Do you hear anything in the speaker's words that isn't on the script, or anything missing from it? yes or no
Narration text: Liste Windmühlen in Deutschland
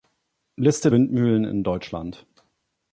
no